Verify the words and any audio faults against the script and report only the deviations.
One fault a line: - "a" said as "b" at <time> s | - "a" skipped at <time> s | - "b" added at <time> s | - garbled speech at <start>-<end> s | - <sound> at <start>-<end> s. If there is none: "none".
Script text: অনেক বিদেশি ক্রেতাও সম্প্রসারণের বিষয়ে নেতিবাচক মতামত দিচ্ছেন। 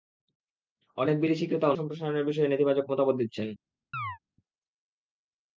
- chirp at 3.9-4.2 s